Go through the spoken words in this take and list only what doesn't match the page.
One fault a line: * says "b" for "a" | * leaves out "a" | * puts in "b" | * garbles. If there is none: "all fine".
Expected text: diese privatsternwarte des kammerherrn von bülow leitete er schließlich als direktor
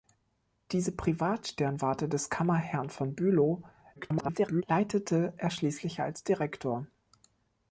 * garbles